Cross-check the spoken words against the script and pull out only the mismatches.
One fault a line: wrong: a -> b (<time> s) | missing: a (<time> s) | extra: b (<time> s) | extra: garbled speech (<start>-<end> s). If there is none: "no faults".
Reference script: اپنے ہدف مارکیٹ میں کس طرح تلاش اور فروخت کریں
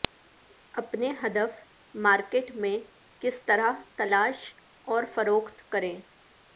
no faults